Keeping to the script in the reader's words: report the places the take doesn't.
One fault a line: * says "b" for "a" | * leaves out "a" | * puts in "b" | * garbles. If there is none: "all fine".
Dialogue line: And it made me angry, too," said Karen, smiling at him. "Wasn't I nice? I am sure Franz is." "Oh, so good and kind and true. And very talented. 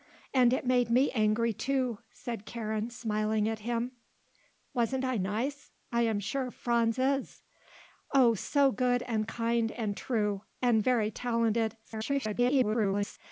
* garbles